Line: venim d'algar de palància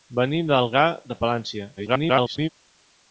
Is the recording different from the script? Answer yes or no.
yes